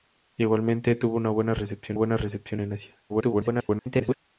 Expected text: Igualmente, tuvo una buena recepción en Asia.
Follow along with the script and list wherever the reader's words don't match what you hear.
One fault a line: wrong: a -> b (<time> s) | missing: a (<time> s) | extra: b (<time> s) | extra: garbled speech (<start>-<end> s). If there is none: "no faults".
extra: buena recepción (1.9 s)
extra: garbled speech (3.1-4.1 s)